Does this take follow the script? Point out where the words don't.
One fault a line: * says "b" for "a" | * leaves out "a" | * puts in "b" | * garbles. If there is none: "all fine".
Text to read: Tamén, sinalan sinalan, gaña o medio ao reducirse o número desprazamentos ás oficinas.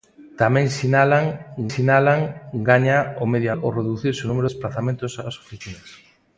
all fine